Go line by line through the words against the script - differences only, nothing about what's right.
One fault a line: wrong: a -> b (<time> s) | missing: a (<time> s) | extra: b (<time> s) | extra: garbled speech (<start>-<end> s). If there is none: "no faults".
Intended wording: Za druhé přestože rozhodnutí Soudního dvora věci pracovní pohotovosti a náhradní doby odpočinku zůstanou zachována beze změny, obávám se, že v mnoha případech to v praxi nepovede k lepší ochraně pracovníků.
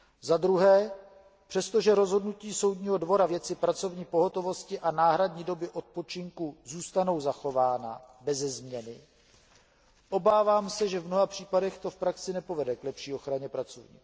no faults